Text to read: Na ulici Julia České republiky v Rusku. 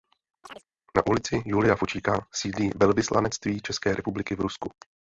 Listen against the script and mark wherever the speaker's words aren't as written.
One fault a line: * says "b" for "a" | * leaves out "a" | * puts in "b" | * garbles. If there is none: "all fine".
* puts in "Fučíka sídlí Velvyslanectví"